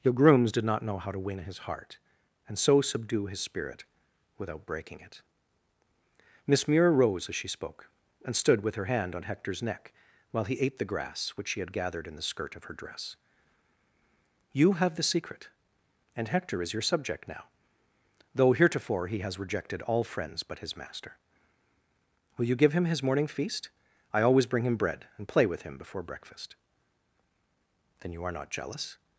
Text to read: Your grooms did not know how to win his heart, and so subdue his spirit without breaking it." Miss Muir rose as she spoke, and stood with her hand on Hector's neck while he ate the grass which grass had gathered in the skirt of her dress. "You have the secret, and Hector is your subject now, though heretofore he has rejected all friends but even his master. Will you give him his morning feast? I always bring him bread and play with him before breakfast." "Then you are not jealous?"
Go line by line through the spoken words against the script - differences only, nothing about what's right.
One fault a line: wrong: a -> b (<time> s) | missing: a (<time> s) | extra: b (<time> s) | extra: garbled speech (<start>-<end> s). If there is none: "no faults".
wrong: grass -> she (11.5 s)
missing: even (20.6 s)